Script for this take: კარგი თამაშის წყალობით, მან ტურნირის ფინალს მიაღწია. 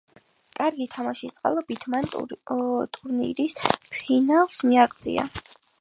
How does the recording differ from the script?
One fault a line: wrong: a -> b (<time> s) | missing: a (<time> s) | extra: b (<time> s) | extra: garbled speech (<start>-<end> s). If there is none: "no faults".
no faults